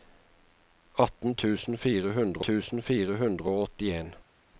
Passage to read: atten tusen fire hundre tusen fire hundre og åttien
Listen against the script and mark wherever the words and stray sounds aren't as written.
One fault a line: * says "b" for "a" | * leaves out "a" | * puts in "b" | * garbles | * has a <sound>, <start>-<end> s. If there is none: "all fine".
all fine